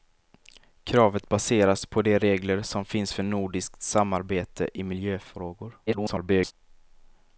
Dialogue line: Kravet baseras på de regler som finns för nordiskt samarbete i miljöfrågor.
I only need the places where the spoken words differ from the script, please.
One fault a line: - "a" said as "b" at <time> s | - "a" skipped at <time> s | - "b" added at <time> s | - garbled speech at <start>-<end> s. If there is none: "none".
- garbled speech at 5.9-6.5 s